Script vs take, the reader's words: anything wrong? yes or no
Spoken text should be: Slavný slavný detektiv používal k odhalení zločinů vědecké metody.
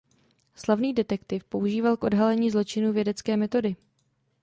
yes